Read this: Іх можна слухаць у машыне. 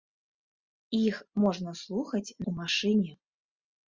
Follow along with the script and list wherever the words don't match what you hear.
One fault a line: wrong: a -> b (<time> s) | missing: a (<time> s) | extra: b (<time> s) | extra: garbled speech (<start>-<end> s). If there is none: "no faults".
no faults